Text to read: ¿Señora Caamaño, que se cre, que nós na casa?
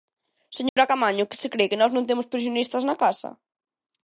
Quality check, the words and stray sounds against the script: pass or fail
fail